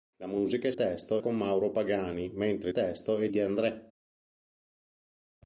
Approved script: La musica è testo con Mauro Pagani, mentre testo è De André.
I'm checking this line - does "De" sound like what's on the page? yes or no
yes